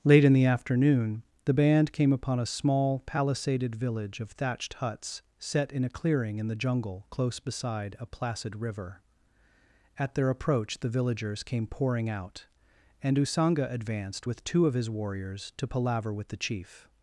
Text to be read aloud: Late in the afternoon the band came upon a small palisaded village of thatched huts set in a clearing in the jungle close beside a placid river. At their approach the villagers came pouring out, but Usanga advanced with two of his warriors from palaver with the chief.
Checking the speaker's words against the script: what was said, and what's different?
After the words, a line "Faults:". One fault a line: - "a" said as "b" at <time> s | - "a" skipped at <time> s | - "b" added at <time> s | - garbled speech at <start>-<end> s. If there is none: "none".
Late in the afternoon the band came upon a small palisaded village of thatched huts set in a clearing in the jungle close beside a placid river. At their approach the villagers came pouring out, and Usanga advanced with two of his warriors to palaver with the chief.
Faults:
- "but" said as "and" at 13.0 s
- "from" said as "to" at 15.6 s